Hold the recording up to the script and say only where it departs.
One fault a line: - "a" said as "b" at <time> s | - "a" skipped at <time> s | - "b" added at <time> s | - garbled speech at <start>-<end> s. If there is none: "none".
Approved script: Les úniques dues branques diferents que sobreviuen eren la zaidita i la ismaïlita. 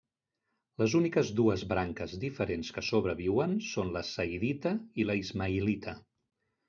- "eren" said as "són" at 3.7 s